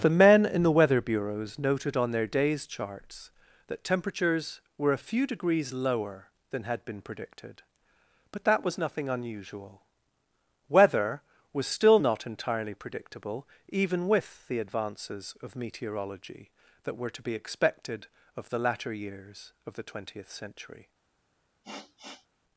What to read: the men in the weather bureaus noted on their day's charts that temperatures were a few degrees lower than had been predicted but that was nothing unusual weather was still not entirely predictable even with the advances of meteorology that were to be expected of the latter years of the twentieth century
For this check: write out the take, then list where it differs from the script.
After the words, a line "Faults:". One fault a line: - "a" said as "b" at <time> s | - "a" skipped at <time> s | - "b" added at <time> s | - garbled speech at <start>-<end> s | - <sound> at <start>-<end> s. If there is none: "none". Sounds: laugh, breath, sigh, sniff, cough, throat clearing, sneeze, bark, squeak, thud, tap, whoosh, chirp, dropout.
the men in the weather bureaus noted on their day's charts that temperatures were a few degrees lower than had been predicted but that was nothing unusual weather was still not entirely predictable even with the advances of meteorology that were to be expected of the latter years of the twentieth century
Faults:
- sniff at 21.6-22.3 s